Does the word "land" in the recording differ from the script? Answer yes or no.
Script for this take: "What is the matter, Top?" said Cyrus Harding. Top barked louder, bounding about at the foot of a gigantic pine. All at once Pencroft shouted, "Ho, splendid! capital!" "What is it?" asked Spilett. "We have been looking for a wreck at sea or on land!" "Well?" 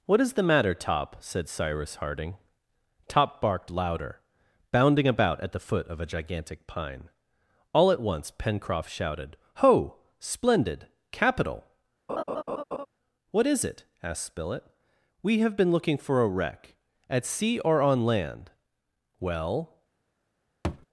no